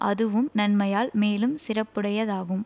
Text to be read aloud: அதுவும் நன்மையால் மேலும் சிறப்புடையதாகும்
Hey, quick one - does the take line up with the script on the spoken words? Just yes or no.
yes